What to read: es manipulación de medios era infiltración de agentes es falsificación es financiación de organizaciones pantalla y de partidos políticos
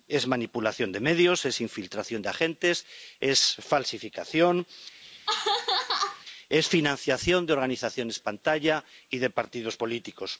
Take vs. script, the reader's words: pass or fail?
fail